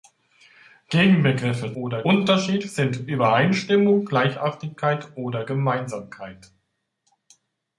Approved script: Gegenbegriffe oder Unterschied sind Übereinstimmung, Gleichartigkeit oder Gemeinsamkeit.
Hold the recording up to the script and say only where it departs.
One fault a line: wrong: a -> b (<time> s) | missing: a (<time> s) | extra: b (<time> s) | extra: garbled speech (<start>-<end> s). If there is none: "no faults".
no faults